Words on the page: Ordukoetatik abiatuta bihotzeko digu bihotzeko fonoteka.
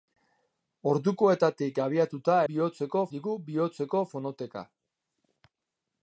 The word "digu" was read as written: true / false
true